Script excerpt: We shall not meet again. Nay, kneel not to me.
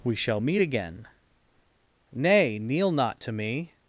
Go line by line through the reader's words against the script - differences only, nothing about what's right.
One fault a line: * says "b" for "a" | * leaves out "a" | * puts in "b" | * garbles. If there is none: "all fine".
* leaves out "not"